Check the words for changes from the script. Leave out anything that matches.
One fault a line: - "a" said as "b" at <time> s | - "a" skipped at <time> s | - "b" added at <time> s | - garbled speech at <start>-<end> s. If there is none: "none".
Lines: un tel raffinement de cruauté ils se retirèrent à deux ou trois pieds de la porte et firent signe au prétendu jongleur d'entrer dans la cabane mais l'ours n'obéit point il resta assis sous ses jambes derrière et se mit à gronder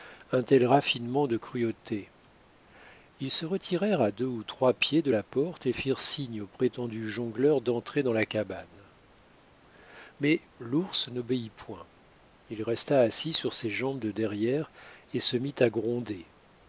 - "sous" said as "sur" at 13.3 s
- "de" added at 14.0 s